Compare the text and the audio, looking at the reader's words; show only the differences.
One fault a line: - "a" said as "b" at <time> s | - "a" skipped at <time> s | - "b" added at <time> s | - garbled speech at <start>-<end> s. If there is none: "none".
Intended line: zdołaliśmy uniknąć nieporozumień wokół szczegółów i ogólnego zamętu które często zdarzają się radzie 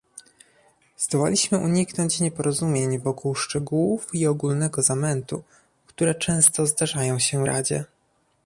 none